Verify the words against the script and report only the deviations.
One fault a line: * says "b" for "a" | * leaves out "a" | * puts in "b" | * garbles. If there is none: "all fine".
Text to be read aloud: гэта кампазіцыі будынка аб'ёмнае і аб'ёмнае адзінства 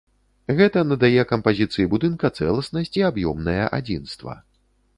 * puts in "надае"
* says "цэласнасць" for "аб'ёмнае"